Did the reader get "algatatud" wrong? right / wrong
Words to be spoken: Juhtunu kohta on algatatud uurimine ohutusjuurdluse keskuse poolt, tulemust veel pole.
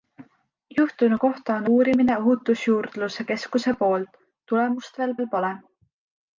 wrong